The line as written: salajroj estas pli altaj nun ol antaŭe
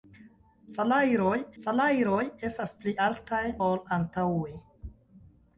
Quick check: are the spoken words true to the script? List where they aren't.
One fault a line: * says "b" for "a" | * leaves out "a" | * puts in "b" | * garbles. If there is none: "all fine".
* puts in "salajroj"
* leaves out "nun"